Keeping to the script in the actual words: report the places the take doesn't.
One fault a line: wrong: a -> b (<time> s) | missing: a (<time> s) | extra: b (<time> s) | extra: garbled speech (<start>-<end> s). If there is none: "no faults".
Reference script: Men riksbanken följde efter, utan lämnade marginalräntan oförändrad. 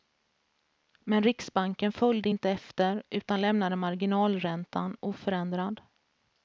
extra: inte (2.3 s)